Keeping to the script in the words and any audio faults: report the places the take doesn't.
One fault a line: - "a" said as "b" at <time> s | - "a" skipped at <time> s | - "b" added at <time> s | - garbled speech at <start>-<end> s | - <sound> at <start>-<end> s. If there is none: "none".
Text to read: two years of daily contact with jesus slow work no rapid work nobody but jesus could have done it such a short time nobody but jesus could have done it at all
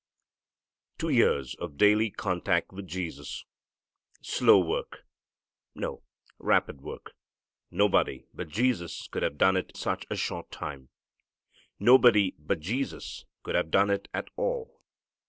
none